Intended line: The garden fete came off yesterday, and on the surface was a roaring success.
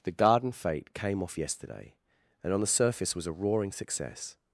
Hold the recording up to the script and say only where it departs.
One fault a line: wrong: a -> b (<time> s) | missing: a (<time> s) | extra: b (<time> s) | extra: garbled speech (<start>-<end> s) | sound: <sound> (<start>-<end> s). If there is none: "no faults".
no faults